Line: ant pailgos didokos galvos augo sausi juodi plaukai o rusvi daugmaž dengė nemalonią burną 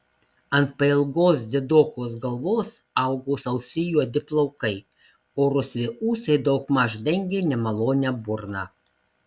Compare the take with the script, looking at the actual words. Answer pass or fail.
fail